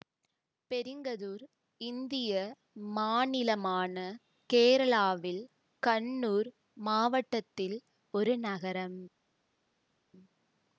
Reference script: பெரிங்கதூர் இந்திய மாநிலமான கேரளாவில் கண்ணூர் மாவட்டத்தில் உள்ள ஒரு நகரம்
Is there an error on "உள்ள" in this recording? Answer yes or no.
yes